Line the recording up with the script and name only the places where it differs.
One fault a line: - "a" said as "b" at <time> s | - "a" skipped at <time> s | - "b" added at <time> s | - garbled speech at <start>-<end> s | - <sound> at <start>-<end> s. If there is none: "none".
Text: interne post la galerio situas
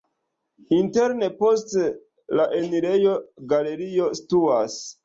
- "enirejo" added at 2.6 s